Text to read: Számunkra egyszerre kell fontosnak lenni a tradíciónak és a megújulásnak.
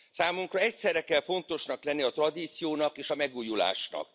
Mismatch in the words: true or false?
false